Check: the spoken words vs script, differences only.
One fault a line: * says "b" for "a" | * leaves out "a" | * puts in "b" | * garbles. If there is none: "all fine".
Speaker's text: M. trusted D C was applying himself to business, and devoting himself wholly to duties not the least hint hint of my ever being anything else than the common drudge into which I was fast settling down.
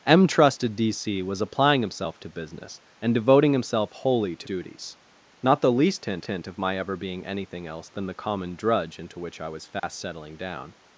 all fine